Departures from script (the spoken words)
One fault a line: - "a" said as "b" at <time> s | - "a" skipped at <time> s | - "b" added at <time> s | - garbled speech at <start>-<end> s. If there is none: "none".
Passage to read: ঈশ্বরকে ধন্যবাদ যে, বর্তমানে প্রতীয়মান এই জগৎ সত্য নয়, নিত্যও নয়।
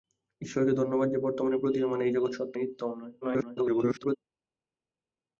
- "নয়" skipped at 2.5 s
- garbled speech at 3.2-4.2 s